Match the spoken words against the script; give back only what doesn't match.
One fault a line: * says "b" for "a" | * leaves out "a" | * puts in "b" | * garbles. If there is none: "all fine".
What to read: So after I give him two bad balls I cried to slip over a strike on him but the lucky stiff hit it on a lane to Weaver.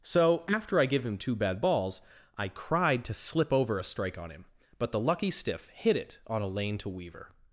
all fine